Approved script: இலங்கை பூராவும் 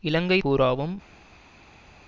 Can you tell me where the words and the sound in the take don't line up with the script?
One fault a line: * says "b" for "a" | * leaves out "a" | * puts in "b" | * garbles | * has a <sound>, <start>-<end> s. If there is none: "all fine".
all fine